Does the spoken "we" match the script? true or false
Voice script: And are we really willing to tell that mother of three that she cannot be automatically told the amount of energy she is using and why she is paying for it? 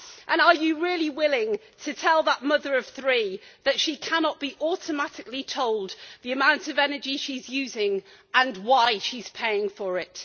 false